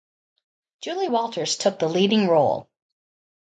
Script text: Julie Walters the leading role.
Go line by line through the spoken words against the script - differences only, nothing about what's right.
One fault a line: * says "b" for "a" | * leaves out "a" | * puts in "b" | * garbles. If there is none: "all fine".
* puts in "took"